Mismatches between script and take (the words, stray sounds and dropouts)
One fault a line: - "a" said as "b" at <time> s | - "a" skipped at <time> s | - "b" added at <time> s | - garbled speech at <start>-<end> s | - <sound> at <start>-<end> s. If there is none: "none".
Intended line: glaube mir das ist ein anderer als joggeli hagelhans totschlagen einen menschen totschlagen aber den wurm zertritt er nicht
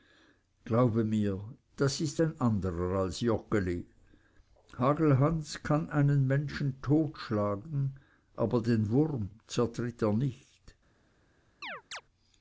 - "totschlagen" said as "kann" at 5.6 s
- chirp at 11.6-12.0 s